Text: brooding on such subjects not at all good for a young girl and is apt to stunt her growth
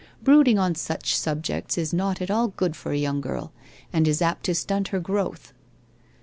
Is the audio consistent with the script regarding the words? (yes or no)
no